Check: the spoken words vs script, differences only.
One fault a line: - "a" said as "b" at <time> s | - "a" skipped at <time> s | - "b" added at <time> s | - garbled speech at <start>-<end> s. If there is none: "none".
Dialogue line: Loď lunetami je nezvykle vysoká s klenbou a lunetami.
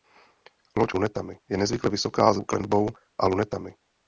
none